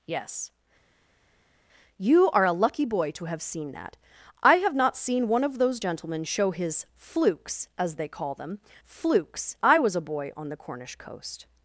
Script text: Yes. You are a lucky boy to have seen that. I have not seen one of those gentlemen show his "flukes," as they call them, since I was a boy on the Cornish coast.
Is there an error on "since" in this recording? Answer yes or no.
yes